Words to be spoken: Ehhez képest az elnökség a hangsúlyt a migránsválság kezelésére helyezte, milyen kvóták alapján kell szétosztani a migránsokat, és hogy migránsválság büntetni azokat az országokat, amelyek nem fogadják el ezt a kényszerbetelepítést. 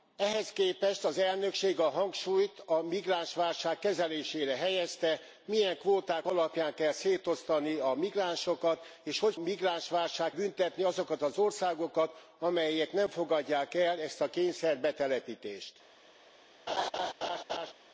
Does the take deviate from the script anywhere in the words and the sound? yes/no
yes